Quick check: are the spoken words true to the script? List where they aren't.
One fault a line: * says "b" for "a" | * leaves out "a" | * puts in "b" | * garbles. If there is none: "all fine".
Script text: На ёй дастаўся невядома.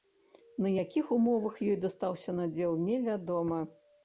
* puts in "якіх умовах"
* puts in "надзел"